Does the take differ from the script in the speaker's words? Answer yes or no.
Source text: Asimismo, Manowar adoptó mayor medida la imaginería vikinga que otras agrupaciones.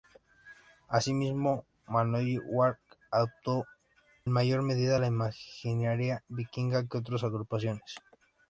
no